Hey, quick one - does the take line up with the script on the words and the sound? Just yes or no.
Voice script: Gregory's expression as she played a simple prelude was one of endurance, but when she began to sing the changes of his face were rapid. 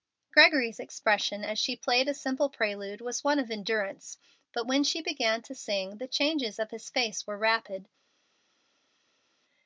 yes